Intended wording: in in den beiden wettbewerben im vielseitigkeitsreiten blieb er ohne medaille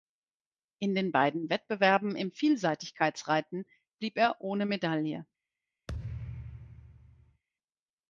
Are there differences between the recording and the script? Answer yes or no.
yes